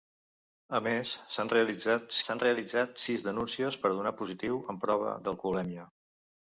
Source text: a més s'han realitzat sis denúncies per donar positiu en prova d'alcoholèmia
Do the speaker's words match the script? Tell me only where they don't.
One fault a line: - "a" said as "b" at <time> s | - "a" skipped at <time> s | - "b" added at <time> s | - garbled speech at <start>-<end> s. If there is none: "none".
- "s'han realitzat" added at 2.3 s